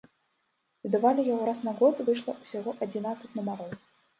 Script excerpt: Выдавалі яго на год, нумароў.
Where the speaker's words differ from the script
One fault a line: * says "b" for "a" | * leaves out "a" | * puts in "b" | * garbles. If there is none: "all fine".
* puts in "раз"
* puts in "выйшла ўсяго адзінаццаць"